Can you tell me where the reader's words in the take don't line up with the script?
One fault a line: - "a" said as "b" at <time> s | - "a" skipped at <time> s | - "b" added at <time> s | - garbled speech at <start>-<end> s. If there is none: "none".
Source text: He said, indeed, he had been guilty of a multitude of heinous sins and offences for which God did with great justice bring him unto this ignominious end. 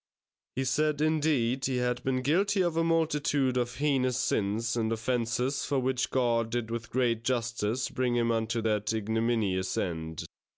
- "this" said as "that" at 8.6 s